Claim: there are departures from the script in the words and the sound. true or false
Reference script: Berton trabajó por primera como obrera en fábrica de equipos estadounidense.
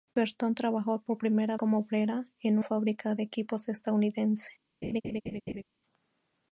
true